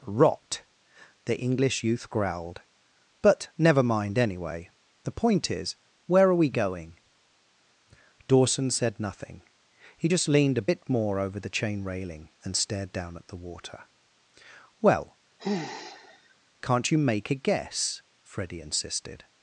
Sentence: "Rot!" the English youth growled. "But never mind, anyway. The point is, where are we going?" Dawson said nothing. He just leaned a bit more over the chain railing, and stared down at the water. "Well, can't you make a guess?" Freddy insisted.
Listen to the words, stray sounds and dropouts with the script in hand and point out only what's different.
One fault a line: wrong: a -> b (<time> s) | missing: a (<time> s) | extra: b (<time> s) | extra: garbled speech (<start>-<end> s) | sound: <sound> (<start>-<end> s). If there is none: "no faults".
sound: sigh (15.4-16.4 s)